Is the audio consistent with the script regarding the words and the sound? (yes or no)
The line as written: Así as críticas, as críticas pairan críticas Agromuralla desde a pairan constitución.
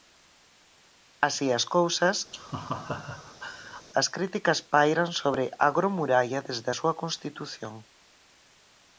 no